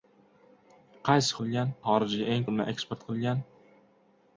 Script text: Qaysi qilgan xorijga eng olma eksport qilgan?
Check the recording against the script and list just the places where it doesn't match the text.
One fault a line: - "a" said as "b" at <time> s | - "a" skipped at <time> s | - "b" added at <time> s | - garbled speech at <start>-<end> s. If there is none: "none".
none